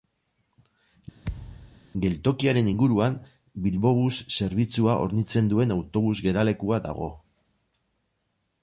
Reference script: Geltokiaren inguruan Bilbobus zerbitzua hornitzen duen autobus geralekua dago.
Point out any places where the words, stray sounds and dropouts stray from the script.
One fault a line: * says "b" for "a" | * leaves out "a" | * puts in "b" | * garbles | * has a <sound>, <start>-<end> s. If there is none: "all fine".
* has a thud, 1.2-1.8 s